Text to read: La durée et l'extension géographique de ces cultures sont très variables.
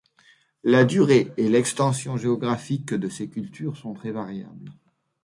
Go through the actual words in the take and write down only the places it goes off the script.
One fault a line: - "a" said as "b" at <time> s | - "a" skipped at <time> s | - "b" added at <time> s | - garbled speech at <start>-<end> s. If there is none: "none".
none